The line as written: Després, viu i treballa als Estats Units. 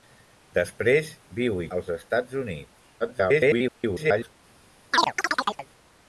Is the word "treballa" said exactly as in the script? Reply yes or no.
no